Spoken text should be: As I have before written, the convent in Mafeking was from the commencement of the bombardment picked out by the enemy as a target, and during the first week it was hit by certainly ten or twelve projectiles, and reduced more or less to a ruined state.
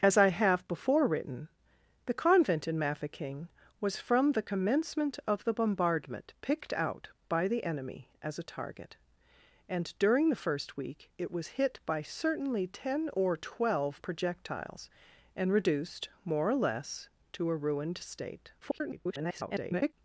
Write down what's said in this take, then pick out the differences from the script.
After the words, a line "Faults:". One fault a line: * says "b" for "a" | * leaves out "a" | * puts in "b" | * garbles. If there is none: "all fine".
As I have before written, the convent in Mafeking was from the commencement of the bombardment picked out by the enemy as a target, and during the first week it was hit by certainly ten or twelve projectiles, and reduced more or less to a ruined state. [garbled]
Faults:
* garbles